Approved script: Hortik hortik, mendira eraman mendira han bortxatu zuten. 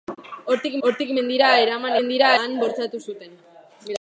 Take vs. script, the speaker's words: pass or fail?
pass